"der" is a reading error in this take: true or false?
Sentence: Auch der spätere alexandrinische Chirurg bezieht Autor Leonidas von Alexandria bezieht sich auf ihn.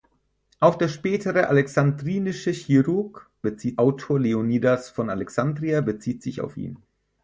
false